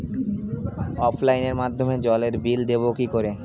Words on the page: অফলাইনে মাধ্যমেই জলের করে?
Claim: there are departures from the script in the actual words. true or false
true